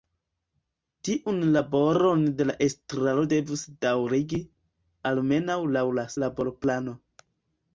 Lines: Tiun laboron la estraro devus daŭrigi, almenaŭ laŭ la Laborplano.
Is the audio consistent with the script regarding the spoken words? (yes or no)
yes